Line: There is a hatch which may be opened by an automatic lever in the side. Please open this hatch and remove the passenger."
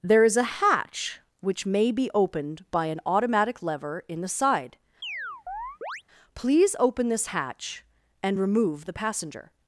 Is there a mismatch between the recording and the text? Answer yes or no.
no